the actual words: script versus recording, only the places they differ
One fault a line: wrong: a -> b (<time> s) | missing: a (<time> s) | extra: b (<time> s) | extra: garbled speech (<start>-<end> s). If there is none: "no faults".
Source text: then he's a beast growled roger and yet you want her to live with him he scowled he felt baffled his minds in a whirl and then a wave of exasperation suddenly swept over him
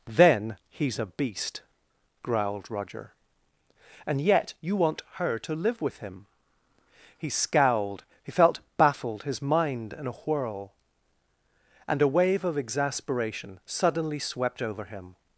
wrong: minds -> mind (9.4 s)
missing: then (12.0 s)